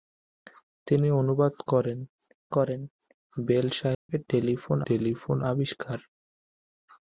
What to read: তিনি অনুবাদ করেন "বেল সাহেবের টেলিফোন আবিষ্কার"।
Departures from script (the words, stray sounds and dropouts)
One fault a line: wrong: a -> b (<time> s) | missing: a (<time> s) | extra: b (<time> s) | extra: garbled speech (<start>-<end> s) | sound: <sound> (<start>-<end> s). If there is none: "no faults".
extra: করেন (2.5 s)
sound: dropout (3.9-4.1 s)
extra: টেলিফোন (4.9 s)